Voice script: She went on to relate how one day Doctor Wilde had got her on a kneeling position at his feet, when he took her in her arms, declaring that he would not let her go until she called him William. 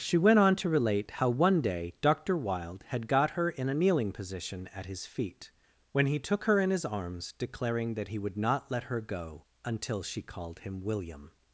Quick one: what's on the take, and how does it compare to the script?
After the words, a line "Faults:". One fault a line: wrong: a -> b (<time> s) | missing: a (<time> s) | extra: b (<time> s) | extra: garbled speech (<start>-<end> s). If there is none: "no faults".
She went on to relate how one day Doctor Wilde had got her in a kneeling position at his feet, when he took her in his arms, declaring that he would not let her go until she called him William.
Faults:
wrong: on -> in (3.5 s)
wrong: her -> his (6.7 s)